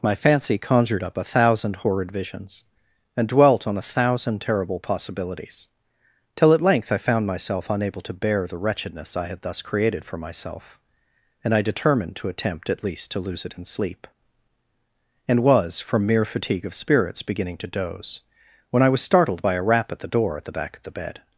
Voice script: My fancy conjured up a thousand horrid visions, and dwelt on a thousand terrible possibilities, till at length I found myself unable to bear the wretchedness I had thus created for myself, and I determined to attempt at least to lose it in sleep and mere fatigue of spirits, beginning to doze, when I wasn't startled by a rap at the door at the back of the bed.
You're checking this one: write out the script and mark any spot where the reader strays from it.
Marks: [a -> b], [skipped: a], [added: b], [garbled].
My fancy conjured up a thousand horrid visions, and dwelt on a thousand terrible possibilities, till at length I found myself unable to bear the wretchedness I had thus created for myself, and I determined to attempt at least to lose it in sleep and [added: was from] mere fatigue of spirits, beginning to doze, when I [wasn't -> was] startled by a rap at the door at the back of the bed.